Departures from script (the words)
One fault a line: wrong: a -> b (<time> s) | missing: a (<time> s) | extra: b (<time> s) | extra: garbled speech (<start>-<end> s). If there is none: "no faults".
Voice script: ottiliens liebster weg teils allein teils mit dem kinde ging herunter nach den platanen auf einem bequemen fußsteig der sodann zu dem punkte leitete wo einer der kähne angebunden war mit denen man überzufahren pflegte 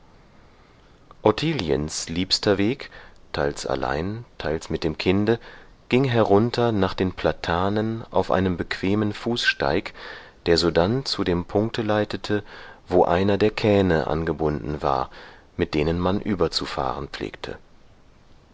no faults